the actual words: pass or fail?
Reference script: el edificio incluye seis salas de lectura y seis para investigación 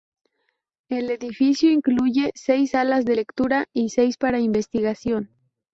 pass